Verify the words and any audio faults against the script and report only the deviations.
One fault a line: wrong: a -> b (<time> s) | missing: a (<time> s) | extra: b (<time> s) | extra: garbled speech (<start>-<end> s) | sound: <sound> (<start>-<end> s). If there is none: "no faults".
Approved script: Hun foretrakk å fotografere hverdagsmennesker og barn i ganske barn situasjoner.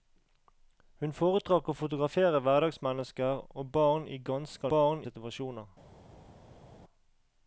no faults